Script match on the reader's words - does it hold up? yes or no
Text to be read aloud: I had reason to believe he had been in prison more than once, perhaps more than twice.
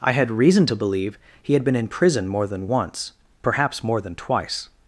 yes